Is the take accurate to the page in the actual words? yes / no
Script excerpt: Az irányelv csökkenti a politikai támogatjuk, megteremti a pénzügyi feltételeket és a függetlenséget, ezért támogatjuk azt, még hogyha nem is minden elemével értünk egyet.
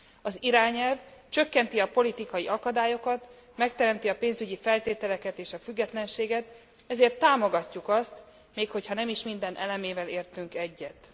no